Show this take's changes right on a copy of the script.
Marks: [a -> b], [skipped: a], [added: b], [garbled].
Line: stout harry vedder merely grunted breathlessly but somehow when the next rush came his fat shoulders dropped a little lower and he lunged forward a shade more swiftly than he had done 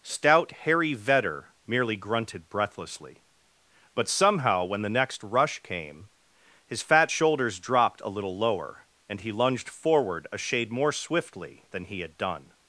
stout harry vedder merely grunted breathlessly but somehow when the next rush came his fat shoulders dropped a little lower and he lunged forward a shade more swiftly than he had done